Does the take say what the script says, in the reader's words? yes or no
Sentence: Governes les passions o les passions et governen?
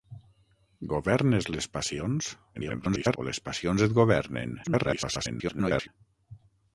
no